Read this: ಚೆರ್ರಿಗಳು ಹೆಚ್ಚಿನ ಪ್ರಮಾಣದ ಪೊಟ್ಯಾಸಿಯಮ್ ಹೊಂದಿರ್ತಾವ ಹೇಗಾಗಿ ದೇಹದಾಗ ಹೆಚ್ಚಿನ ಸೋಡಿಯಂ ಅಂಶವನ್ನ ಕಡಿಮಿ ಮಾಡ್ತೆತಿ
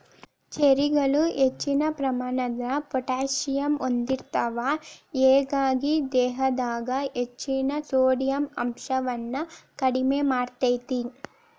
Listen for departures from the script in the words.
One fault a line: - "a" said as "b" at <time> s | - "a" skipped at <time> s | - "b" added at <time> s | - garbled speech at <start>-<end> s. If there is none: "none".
none